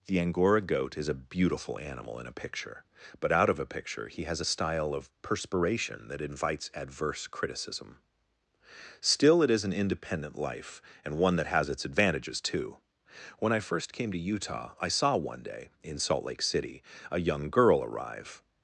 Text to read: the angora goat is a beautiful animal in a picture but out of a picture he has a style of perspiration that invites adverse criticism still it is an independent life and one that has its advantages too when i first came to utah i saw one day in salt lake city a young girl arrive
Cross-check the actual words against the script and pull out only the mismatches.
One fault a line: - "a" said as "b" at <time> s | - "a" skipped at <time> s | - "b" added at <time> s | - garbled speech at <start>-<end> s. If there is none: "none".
none